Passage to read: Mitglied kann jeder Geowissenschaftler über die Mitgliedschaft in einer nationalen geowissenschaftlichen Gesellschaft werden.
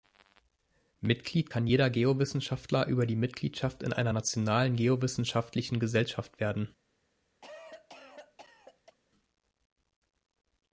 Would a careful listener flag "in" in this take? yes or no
no